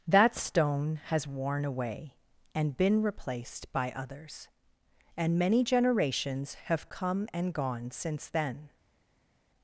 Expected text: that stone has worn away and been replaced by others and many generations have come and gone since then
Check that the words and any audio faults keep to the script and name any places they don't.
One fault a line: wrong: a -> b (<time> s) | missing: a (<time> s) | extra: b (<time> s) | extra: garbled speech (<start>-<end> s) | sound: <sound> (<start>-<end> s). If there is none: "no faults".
no faults